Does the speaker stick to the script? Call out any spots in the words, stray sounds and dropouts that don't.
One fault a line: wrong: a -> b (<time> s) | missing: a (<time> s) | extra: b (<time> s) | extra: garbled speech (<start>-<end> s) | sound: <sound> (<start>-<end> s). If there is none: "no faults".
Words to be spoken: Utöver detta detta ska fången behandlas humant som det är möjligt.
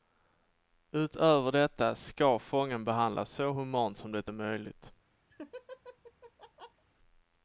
missing: detta (1.9 s)
extra: så (3.3 s)
sound: laugh (5.3-6.8 s)